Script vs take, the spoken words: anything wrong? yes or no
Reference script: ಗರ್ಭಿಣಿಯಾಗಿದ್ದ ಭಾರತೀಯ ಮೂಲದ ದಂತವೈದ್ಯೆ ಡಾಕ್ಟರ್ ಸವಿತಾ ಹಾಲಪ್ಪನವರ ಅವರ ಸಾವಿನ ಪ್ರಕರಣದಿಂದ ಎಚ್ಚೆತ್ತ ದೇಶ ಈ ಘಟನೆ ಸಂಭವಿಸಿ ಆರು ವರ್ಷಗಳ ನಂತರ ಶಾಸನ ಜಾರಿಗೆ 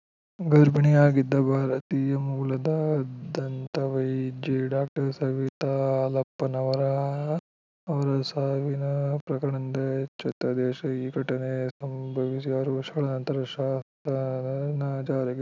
no